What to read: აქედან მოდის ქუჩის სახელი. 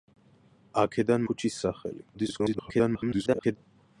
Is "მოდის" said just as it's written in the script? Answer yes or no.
no